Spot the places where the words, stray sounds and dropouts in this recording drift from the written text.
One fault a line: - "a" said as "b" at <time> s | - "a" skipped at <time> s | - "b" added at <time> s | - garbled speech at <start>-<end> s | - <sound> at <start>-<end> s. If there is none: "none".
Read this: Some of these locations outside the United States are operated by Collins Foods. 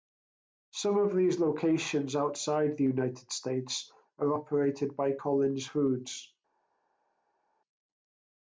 none